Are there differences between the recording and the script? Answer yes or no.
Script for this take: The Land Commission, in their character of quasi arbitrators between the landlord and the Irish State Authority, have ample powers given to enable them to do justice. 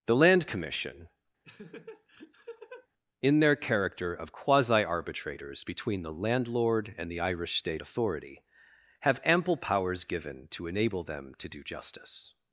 no